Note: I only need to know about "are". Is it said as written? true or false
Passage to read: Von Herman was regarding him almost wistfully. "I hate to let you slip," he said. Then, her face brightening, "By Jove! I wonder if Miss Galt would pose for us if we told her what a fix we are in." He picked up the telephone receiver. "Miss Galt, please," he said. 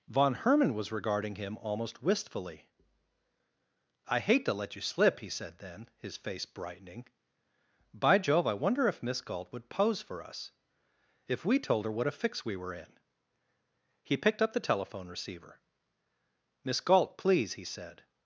false